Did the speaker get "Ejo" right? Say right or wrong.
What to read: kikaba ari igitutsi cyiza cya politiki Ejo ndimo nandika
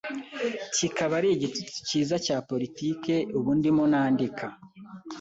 wrong